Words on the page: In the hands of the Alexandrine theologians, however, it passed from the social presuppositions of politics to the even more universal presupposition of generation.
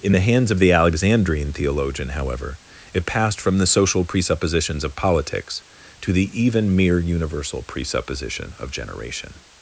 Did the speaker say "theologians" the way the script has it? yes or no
no